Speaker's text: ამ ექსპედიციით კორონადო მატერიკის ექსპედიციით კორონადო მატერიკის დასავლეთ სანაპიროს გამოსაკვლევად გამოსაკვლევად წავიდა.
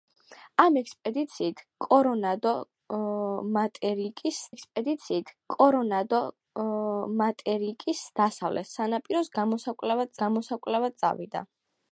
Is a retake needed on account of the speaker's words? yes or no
no